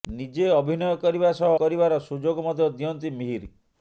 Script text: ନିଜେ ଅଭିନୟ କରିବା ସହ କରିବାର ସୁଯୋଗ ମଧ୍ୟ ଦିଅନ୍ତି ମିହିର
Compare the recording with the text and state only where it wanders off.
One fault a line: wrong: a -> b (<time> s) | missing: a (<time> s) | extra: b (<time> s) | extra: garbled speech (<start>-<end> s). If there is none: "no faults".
no faults